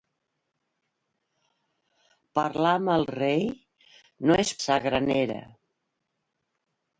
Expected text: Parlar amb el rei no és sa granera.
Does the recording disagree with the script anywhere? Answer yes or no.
no